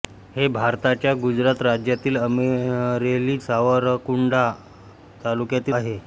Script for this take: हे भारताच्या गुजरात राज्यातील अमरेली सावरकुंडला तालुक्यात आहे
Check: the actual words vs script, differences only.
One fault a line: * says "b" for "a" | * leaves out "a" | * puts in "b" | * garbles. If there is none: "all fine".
all fine